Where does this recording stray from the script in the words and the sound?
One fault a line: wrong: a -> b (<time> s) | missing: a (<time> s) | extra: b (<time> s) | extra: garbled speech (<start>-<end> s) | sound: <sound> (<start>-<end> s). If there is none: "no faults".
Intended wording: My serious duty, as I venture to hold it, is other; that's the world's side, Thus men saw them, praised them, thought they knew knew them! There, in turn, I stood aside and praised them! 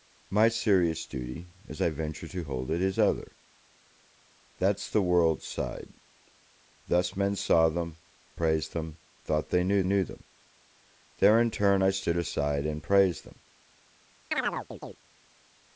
sound: chirp (14.3-15.0 s)